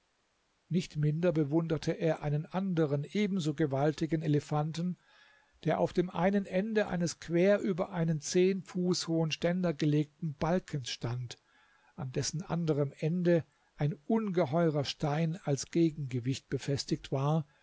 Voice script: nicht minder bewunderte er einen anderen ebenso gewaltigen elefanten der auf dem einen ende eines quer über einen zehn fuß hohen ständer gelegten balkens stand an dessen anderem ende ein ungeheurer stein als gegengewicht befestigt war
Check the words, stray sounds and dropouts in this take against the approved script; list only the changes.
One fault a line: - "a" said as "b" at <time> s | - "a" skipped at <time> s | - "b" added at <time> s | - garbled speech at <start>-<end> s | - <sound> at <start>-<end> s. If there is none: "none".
none